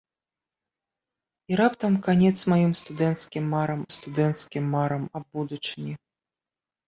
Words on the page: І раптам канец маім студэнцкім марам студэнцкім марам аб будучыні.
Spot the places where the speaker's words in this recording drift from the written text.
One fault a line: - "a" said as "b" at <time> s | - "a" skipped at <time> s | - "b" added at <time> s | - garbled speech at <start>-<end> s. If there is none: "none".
none